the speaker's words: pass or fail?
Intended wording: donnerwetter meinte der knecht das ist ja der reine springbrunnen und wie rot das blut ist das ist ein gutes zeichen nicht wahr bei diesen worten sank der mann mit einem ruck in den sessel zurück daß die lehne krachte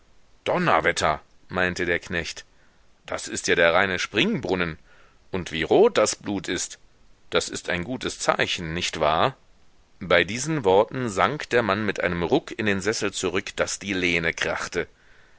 pass